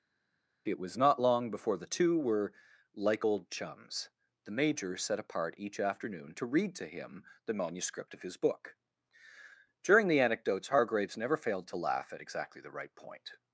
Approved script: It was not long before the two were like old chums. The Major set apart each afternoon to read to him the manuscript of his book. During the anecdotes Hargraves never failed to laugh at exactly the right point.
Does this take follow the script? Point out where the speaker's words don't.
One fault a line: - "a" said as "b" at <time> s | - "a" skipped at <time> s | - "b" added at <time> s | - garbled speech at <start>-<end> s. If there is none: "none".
none